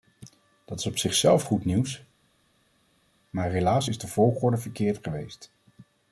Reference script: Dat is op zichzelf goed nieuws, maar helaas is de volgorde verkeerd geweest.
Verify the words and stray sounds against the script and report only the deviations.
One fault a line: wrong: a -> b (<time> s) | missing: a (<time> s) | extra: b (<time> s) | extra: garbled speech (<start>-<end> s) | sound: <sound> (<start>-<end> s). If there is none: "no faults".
no faults